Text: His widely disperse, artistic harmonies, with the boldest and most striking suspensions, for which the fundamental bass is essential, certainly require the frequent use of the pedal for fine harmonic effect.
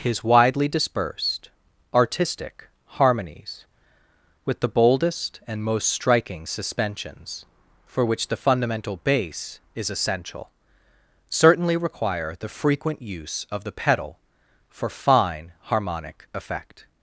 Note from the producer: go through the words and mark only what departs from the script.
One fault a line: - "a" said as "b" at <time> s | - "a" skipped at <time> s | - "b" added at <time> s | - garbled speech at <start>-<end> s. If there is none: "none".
- "disperse" said as "dispersed" at 0.7 s